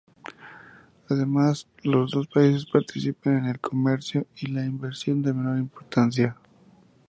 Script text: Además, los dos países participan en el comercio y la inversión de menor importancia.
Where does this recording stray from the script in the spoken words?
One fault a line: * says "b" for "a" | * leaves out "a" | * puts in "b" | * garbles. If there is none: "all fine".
all fine